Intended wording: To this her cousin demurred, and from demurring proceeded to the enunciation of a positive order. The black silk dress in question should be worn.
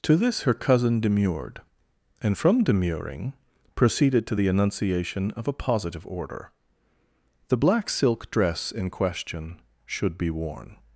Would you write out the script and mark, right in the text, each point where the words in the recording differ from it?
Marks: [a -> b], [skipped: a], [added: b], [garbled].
To this her cousin demurred, and from demurring proceeded to the enunciation of a positive order. The black silk dress in question should be worn.